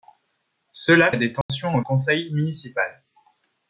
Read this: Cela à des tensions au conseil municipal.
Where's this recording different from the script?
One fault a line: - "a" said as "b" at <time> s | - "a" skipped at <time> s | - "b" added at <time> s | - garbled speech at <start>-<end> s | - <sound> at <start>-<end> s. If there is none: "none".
- dropout at 1.4-1.5 s